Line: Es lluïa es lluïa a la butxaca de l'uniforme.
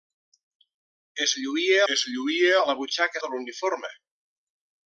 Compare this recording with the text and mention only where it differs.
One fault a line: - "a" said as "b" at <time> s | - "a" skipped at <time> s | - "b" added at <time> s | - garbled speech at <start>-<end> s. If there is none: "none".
none